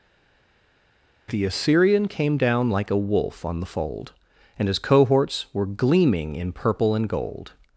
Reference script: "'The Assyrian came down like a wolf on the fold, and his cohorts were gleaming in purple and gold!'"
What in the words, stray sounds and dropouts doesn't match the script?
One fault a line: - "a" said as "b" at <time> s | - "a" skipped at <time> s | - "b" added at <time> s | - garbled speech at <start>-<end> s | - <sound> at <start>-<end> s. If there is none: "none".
none